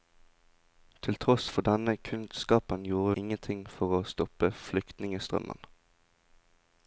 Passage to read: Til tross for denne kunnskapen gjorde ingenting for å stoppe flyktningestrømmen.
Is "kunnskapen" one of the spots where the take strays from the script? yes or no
no